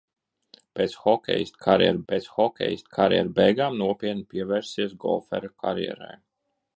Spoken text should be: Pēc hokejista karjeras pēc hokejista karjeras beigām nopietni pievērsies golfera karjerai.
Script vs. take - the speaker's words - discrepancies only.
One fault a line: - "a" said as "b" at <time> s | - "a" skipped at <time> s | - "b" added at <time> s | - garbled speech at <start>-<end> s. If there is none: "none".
none